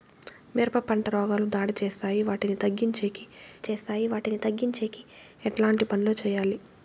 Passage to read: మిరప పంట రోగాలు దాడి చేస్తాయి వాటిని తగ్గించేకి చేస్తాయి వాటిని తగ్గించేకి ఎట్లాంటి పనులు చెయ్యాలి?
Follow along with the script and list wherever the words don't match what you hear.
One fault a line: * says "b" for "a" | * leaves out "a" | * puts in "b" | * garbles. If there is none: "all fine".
all fine